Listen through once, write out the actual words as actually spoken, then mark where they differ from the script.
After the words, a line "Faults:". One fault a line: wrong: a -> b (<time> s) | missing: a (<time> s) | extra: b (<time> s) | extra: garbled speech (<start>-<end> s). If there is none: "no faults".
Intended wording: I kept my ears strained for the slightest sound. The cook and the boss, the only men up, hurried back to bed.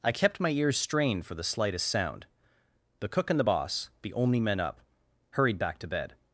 I kept my ears strained for the slightest sound. The cook and the boss, the only men up, hurried back to bed.
Faults:
no faults